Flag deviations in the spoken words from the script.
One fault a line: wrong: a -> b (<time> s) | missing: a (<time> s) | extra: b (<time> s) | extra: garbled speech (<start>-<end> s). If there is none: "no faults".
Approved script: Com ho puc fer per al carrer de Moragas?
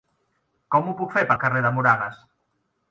no faults